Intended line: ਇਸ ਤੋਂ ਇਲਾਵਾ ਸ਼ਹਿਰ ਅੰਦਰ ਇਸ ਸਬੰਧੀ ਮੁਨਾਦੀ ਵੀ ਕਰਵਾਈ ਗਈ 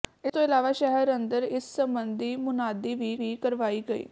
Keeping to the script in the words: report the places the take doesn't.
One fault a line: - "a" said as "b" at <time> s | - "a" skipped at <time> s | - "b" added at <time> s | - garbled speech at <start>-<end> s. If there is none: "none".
- "ਵੀ" added at 3.1 s